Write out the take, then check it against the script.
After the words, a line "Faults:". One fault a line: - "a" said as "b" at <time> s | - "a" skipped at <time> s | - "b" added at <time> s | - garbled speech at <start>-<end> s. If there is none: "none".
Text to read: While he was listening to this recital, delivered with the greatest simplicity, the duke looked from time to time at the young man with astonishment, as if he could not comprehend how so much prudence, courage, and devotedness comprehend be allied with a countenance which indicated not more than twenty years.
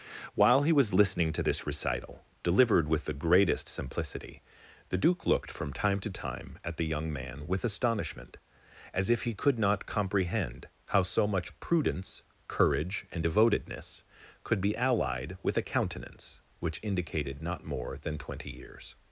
While he was listening to this recital, delivered with the greatest simplicity, the duke looked from time to time at the young man with astonishment, as if he could not comprehend how so much prudence, courage, and devotedness could be allied with a countenance which indicated not more than twenty years.
Faults:
- "comprehend" said as "could" at 14.4 s